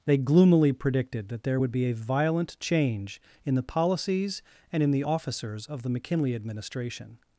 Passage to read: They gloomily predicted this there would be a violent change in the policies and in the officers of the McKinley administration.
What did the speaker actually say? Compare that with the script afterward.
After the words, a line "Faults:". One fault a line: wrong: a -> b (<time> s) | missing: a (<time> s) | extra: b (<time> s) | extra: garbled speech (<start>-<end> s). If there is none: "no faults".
They gloomily predicted that there would be a violent change in the policies and in the officers of the McKinley administration.
Faults:
wrong: this -> that (1.3 s)